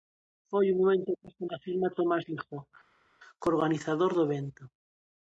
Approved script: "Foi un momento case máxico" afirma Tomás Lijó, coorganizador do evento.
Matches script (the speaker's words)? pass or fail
fail